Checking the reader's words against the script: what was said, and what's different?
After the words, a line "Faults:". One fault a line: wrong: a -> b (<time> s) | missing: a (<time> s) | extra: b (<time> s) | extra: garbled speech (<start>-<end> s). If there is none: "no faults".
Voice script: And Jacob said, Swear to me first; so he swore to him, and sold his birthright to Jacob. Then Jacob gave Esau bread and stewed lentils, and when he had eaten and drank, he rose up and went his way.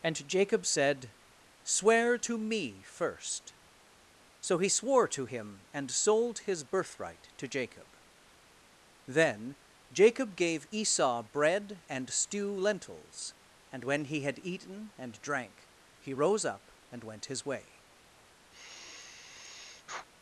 And Jacob said, Swear to me first; so he swore to him, and sold his birthright to Jacob. Then Jacob gave Esau bread and stew lentils, and when he had eaten and drank, he rose up and went his way.
Faults:
wrong: stewed -> stew (12.1 s)